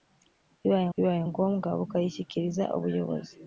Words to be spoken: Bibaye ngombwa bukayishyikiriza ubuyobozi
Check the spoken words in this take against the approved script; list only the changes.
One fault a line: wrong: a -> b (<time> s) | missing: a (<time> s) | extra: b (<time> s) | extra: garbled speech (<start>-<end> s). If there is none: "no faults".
extra: bibaye (0.9 s)